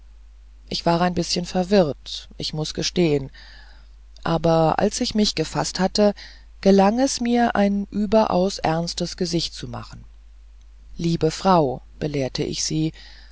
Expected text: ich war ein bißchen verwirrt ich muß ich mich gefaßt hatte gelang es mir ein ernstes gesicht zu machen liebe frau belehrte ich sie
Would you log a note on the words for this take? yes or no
yes